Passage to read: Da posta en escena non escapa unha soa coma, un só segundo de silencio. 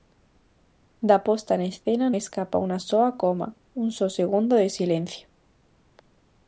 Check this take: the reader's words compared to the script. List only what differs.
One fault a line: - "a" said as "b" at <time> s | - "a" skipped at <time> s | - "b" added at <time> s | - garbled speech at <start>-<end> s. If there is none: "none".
- "non" skipped at 2.1 s